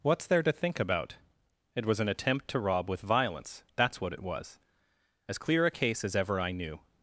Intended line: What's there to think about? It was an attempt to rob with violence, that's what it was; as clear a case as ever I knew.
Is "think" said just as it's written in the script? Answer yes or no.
yes